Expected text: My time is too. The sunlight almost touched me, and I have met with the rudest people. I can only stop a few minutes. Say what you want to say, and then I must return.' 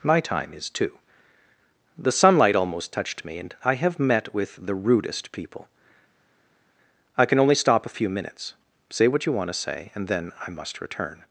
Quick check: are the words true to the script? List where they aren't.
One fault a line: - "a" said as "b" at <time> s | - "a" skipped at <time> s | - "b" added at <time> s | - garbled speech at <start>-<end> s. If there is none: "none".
none